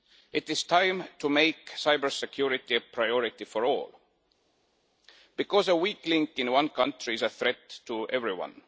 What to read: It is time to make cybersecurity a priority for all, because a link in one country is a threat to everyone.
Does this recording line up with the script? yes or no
no